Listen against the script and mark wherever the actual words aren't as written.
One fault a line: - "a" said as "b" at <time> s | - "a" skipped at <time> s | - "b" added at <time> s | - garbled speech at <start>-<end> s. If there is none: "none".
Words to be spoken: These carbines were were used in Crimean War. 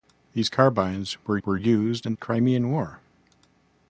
none